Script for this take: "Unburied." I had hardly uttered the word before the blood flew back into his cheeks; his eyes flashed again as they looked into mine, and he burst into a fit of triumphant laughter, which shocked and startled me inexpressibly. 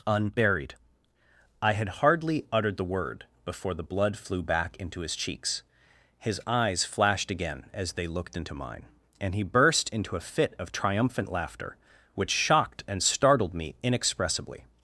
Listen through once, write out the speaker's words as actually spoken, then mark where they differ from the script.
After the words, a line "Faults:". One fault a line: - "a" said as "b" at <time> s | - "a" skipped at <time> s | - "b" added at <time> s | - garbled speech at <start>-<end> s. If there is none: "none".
"Unburied." I had hardly uttered the word before the blood flew back into his cheeks; his eyes flashed again as they looked into mine, and he burst into a fit of triumphant laughter, which shocked and startled me inexpressibly.
Faults:
none